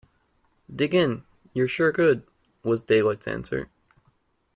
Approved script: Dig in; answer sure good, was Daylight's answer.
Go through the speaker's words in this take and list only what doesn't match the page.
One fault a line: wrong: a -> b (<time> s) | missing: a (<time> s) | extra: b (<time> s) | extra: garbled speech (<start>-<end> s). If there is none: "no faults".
wrong: answer -> you're (1.5 s)